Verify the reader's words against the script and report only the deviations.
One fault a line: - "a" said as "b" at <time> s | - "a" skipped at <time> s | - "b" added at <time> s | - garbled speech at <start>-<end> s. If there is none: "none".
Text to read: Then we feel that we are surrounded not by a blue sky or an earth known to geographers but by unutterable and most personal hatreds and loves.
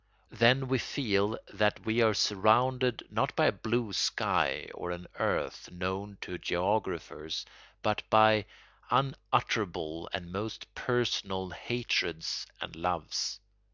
none